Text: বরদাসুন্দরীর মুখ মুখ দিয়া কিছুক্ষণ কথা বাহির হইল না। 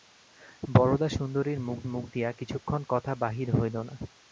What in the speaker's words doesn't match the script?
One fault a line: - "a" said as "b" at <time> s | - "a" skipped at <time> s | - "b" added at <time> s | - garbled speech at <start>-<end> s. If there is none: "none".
none